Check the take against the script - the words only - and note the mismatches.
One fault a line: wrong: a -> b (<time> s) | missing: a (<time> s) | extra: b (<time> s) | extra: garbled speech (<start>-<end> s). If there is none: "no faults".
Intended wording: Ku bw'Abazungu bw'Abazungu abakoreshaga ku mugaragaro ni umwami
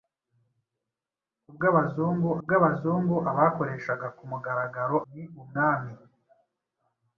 no faults